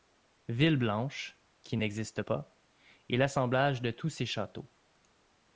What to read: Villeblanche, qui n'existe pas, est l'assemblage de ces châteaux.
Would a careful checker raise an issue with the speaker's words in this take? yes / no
yes